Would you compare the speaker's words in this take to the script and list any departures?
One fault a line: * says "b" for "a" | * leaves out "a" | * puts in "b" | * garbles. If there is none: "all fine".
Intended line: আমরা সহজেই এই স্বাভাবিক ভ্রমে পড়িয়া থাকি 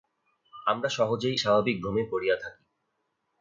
* leaves out "এই"